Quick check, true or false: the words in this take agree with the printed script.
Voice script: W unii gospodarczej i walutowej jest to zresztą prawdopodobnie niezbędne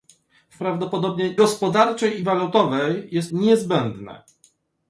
false